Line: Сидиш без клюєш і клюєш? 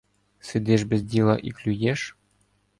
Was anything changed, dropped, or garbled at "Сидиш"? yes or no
no